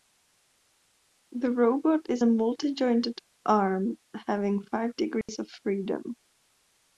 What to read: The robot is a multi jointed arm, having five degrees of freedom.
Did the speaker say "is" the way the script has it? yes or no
yes